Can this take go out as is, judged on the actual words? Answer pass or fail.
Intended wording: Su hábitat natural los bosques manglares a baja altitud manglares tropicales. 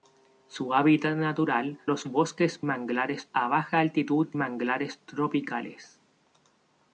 pass